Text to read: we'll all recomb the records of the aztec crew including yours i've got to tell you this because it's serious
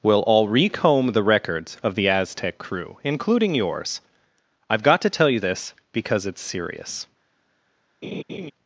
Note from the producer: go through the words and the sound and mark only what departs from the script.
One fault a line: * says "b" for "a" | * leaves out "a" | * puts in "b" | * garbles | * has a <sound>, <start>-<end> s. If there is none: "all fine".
* has a laugh, 8.0-8.5 s